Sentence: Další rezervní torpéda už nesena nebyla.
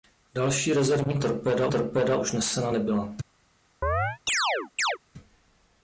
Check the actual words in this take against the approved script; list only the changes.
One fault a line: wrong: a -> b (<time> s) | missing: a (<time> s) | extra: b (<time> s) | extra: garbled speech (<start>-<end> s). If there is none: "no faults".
extra: torpéda (1.7 s)